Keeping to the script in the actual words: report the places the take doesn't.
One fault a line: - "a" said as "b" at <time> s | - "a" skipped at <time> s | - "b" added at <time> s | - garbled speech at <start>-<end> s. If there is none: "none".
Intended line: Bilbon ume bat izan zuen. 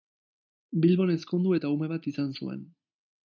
- "ezkondu eta" added at 1.1 s